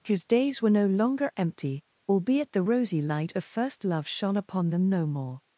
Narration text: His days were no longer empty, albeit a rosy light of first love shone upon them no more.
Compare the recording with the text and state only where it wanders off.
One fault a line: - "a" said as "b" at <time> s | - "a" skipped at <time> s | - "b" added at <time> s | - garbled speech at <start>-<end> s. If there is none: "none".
- "a" said as "the" at 2.5 s